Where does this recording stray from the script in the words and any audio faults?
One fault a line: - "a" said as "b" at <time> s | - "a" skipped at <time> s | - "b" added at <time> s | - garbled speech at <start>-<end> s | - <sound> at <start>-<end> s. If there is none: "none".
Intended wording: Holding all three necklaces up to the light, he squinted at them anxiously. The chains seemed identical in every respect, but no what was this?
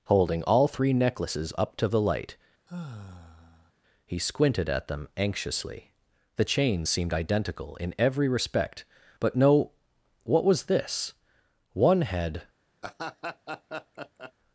- sigh at 2.7-3.7 s
- "One had" added at 11.7 s
- laugh at 12.8-14.3 s